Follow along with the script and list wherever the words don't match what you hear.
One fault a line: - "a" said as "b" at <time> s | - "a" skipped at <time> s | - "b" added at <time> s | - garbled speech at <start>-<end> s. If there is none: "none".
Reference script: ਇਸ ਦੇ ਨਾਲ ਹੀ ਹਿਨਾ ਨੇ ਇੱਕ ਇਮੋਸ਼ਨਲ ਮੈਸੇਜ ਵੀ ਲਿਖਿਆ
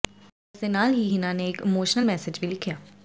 none